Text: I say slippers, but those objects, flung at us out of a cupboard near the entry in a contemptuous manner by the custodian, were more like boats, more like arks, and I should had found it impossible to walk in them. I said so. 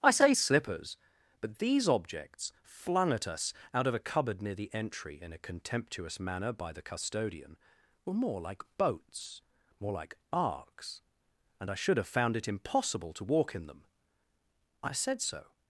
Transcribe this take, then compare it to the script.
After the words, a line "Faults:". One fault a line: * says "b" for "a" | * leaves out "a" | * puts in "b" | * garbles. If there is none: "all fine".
I say slippers, but these objects, flung at us out of a cupboard near the entry in a contemptuous manner by the custodian, were more like boats, more like arks, and I should have found it impossible to walk in them. I said so.
Faults:
* says "these" for "those"
* says "have" for "had"